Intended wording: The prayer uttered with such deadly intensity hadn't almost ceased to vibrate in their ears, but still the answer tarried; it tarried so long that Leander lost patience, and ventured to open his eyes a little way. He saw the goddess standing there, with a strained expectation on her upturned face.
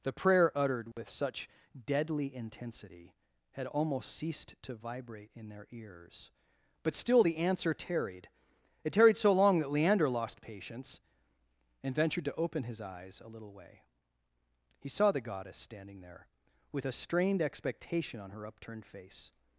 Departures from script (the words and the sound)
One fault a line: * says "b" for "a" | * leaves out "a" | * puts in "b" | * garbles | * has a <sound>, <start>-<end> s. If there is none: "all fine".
* has a dropout, 0.9-1.0 s
* says "had" for "hadn't"